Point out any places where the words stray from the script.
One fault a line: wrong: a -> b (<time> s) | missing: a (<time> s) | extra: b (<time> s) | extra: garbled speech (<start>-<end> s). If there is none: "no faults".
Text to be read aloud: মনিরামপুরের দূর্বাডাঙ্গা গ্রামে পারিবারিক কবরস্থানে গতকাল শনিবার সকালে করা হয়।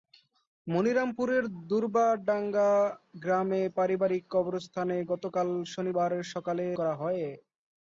no faults